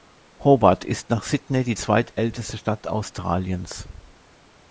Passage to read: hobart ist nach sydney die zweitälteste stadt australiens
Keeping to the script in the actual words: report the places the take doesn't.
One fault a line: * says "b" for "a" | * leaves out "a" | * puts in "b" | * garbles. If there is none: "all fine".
all fine